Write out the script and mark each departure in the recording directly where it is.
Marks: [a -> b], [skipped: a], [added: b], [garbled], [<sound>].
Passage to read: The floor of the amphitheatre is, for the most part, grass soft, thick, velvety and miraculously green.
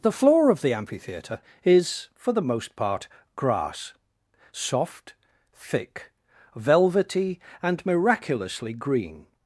The floor of the amphitheatre is, for the most part, grass soft, thick, velvety and miraculously green.